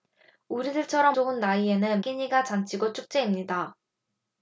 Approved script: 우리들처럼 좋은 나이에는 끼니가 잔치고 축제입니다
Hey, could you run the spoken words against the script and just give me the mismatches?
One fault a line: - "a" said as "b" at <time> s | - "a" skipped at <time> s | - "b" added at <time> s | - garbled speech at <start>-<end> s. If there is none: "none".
none